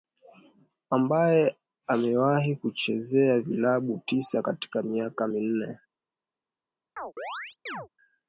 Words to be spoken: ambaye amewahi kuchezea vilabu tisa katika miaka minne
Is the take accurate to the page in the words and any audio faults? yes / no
no